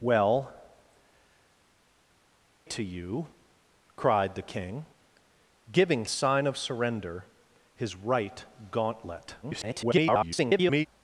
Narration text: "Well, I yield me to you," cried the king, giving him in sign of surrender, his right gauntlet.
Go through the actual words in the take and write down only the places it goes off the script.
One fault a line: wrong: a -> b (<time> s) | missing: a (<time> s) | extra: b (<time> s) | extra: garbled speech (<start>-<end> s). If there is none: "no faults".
missing: I yield me (0.5 s)
missing: him in (6.1 s)
extra: garbled speech (9.4-10.9 s)